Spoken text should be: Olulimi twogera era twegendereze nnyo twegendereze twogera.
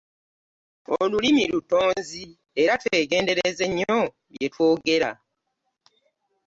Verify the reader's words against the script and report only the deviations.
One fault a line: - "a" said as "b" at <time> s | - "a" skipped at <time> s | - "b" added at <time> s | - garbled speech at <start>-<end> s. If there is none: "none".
- "twogera" said as "lutonzi" at 1.5 s
- "twegendereze" said as "bye" at 4.3 s